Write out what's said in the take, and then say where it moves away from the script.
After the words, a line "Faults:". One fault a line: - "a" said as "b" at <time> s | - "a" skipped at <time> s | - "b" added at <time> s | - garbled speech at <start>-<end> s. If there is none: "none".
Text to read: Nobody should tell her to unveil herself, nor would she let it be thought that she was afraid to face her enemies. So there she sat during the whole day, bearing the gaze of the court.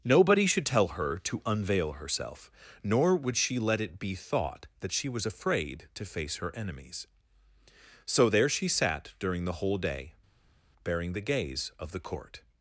Nobody should tell her to unveil herself, nor would she let it be thought that she was afraid to face her enemies. So there she sat during the whole day, bearing the gaze of the court.
Faults:
none